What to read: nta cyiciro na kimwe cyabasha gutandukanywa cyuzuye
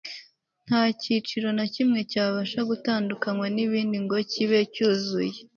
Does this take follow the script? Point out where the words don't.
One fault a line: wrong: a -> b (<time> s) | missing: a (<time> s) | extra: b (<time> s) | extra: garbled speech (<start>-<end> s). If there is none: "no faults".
extra: n'ibindi ngo kibe (3.5 s)